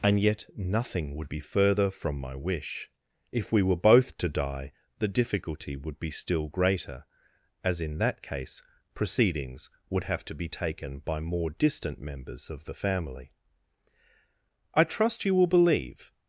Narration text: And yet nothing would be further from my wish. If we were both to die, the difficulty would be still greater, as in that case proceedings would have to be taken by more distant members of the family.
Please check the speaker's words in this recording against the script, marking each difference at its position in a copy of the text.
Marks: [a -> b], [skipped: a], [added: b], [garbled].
And yet nothing would be further from my wish. If we were both to die, the difficulty would be still greater, as in that case proceedings would have to be taken by more distant members of the family. [added: I trust you will believe]